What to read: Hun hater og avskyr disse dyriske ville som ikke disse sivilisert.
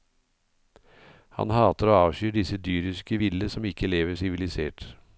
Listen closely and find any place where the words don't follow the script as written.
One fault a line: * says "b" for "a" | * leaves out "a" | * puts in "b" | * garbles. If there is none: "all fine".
* says "Han" for "Hun"
* says "lever" for "disse"